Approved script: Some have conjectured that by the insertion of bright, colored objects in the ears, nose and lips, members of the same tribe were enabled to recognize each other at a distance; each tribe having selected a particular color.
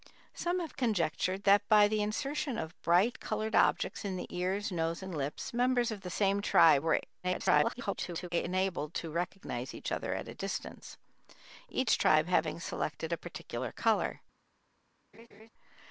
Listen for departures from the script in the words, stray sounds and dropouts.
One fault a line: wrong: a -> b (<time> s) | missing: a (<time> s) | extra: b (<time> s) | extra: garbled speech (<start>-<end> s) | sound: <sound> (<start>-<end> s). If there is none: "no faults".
extra: garbled speech (7.2-8.3 s)
sound: laugh (15.1-15.5 s)